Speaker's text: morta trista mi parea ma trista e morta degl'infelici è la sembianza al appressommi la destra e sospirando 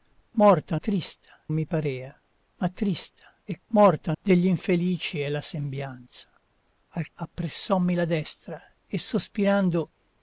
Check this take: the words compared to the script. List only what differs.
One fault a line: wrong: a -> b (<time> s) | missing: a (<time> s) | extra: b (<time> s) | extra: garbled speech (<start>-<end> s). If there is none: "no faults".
no faults